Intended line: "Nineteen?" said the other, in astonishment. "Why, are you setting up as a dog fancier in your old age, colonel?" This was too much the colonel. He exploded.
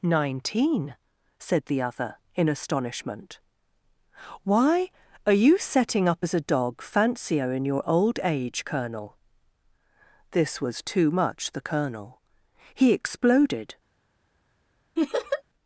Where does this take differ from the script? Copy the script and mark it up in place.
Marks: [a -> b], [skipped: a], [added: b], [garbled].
"Nineteen?" said the other, in astonishment. "Why, are you setting up as a dog fancier in your old age, colonel?" This was too much the colonel. He exploded.